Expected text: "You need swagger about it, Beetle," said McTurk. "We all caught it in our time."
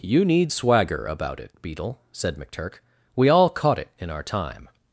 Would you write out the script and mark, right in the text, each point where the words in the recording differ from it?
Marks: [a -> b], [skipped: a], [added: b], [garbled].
"You need swagger about it, Beetle," said McTurk. "We all caught it in our time."